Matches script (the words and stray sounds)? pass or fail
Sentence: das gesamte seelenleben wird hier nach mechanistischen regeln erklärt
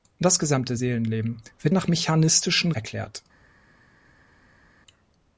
fail